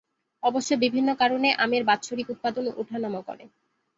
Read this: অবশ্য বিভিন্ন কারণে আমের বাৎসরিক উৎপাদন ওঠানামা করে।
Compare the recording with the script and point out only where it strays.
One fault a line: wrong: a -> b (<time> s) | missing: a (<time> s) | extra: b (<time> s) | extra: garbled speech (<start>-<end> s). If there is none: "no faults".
no faults